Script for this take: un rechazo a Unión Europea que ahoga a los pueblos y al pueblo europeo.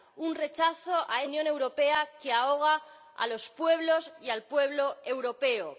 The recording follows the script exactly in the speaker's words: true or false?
true